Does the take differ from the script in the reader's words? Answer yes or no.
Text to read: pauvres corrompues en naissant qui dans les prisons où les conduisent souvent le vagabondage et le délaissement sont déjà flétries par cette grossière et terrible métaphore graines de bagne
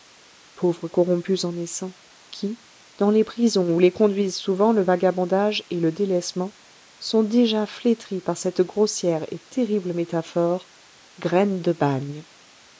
no